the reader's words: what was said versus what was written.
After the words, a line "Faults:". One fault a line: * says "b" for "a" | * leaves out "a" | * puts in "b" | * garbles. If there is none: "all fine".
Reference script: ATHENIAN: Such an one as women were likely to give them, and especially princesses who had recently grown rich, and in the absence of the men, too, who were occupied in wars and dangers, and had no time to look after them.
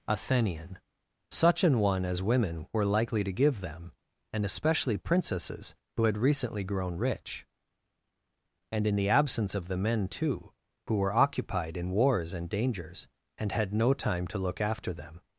ATHENIAN: Such an one as women were likely to give them, and especially princesses who had recently grown rich, and in the absence of the men, too, who were occupied in wars and dangers, and had no time to look after them.
Faults:
all fine